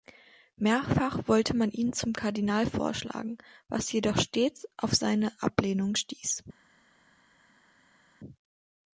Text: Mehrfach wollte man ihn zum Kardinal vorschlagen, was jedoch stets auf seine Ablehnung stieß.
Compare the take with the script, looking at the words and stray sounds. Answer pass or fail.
pass